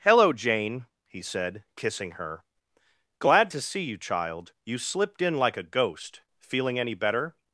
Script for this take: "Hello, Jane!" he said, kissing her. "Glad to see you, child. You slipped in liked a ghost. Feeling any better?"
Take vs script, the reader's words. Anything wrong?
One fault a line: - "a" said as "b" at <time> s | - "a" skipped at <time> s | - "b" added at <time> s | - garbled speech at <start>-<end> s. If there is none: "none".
- "liked" said as "like" at 5.4 s